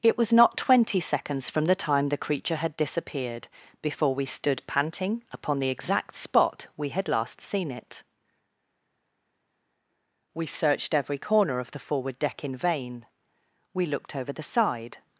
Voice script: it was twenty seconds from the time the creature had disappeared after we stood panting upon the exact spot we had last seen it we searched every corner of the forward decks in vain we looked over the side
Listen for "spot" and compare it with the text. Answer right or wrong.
right